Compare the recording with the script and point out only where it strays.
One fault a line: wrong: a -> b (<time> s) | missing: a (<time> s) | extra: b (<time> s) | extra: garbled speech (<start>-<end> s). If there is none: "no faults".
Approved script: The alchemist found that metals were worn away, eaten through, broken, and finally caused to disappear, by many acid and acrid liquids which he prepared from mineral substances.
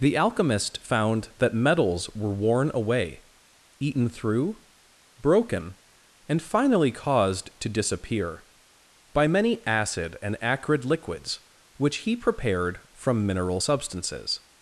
no faults